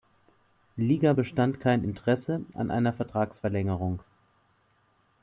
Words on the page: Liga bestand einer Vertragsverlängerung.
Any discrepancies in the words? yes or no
yes